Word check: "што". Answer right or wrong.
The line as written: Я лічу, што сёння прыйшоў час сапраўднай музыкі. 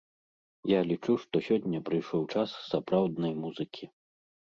right